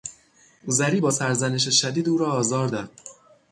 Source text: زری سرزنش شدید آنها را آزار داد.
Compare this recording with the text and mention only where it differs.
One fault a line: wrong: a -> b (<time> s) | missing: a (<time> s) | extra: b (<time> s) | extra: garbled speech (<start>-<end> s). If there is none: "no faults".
extra: با (1.0 s)
wrong: آنها -> او (2.1 s)